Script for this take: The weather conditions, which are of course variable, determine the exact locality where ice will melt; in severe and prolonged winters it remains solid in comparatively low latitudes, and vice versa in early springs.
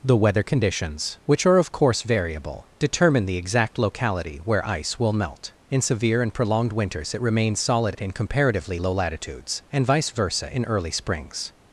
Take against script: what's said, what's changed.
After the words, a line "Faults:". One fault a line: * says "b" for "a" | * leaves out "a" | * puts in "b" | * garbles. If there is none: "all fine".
The weather conditions, which are of course variable, determine the exact locality where ice will melt; in severe and prolonged winters it remains solid in comparatively low latitudes, and vice versa in early springs.
Faults:
all fine